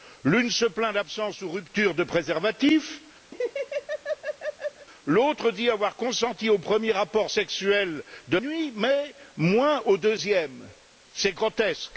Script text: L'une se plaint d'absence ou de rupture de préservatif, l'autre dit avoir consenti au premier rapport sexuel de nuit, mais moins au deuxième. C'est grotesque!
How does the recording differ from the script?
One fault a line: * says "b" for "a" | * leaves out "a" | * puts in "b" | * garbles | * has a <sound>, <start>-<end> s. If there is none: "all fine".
* has a laugh, 3.3-4.9 s